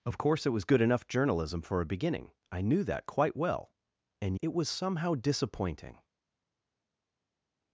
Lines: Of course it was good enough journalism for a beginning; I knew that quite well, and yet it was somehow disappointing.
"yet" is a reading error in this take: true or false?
true